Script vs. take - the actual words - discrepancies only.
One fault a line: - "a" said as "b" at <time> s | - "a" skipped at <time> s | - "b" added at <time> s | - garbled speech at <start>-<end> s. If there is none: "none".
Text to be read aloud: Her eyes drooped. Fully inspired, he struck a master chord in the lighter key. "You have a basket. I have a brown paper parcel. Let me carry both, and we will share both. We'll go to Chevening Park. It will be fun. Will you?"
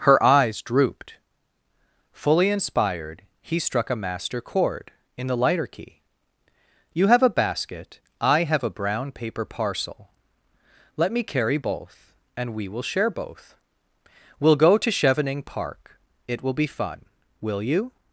none